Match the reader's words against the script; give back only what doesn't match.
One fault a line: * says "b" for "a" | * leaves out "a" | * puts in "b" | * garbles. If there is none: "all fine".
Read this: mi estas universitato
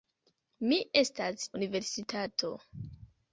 all fine